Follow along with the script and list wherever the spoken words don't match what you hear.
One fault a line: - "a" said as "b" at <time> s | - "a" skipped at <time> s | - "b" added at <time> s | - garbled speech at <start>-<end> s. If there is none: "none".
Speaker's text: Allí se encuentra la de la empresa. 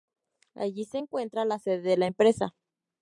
- "sede" added at 1.6 s